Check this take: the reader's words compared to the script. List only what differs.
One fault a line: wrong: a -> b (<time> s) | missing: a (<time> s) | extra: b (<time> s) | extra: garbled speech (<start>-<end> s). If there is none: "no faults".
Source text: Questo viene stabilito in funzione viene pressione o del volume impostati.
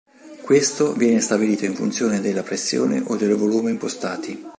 wrong: viene -> della (2.2 s)